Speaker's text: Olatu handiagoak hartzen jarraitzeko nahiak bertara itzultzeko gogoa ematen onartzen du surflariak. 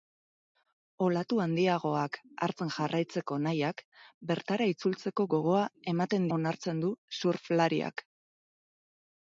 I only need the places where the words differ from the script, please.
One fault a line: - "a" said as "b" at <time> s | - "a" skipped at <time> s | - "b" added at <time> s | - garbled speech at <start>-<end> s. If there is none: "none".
none